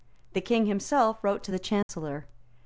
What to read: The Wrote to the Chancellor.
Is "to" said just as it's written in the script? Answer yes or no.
yes